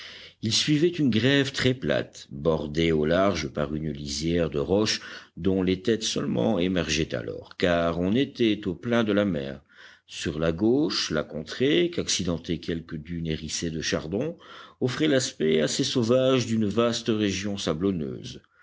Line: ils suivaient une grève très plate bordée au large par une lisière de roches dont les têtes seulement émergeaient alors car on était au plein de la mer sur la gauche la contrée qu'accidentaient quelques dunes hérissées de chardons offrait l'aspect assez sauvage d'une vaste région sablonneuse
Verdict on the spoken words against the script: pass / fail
pass